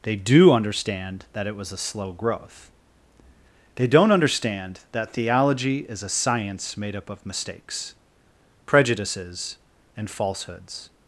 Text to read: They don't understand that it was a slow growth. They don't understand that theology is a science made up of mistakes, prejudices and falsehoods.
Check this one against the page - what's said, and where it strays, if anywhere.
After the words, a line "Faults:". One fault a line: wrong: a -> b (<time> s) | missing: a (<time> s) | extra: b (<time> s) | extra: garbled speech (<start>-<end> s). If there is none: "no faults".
They do understand that it was a slow growth. They don't understand that theology is a science made up of mistakes, prejudices and falsehoods.
Faults:
wrong: don't -> do (0.1 s)